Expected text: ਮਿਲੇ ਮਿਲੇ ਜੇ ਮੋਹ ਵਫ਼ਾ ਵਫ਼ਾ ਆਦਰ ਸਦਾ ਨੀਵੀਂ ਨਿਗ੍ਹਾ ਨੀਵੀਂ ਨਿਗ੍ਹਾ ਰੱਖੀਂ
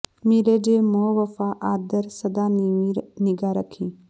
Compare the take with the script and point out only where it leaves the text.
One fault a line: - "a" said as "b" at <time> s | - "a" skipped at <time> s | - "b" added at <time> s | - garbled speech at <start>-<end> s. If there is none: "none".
- "ਮਿਲੇ" skipped at 0.6 s
- "ਵਫ਼ਾ" skipped at 1.5 s
- "ਨੀਵੀਂ ਨਿਗ੍ਹਾ" skipped at 3.5 s